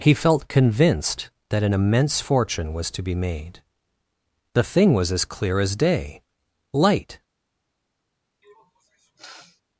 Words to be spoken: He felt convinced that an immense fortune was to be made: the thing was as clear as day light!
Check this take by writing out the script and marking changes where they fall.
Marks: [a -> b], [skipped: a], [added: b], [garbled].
He felt convinced that an immense fortune was to be made: the thing was as clear as day light!